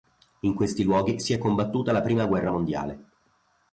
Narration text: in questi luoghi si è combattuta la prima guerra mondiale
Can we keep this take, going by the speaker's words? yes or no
yes